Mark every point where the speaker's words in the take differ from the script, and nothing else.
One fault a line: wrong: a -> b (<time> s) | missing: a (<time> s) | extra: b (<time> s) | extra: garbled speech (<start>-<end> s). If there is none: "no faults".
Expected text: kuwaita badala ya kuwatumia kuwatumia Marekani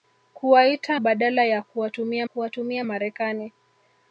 no faults